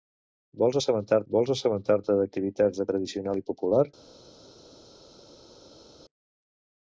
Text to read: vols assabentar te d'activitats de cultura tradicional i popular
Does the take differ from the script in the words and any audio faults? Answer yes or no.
yes